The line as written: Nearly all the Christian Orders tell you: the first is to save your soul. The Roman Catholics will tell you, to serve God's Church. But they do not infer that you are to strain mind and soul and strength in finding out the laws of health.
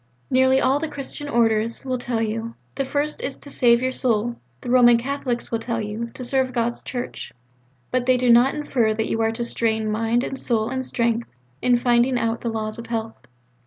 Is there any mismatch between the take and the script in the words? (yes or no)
yes